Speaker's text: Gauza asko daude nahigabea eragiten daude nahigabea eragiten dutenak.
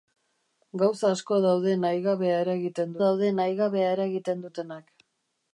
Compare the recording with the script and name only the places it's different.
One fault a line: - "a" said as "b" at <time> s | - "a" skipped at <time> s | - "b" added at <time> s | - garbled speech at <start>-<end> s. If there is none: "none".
none